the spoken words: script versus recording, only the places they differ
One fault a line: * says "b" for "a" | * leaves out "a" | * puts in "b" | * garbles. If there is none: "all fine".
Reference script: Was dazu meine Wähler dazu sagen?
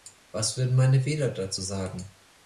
* says "würden" for "dazu"